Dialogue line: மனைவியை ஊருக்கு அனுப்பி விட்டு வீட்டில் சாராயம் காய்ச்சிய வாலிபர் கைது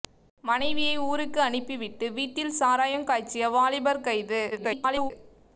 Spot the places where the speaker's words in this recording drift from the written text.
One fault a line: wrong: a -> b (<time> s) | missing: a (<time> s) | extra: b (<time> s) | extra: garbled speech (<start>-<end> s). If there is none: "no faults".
extra: garbled speech (4.5-5.1 s)